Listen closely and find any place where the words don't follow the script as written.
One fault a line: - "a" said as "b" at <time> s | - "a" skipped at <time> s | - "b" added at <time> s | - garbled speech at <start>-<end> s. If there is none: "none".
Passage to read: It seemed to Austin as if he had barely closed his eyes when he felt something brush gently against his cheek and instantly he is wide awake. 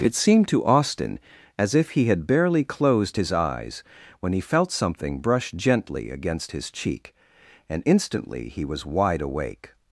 - "is" said as "was" at 8.7 s